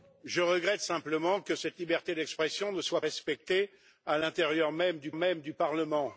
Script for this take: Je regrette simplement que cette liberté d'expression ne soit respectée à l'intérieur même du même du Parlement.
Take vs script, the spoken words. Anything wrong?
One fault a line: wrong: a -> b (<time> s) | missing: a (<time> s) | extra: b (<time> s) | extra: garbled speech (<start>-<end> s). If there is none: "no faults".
no faults